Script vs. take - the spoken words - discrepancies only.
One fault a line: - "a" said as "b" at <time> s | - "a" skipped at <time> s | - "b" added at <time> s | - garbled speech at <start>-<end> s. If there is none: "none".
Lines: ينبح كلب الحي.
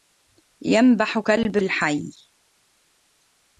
none